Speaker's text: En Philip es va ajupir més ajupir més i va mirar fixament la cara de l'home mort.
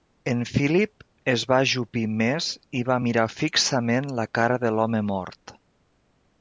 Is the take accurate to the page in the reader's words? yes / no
no